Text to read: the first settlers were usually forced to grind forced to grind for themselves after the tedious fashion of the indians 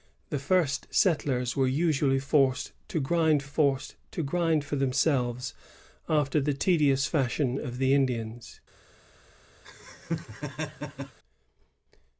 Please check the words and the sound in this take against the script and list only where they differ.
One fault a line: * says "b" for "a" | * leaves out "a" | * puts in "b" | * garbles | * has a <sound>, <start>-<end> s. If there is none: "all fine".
* has a laugh, 9.6-11.2 s